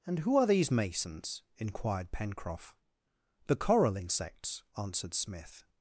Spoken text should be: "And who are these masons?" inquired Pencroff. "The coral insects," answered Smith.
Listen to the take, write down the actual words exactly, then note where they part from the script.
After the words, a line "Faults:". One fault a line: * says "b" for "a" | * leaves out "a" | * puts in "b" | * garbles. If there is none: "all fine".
"And who are these masons?" inquired Pencroff. "The coral insects," answered Smith.
Faults:
all fine